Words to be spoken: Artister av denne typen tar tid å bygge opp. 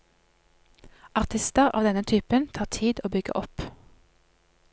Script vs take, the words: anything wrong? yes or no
no